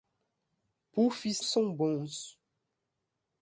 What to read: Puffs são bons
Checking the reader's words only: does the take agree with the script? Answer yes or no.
yes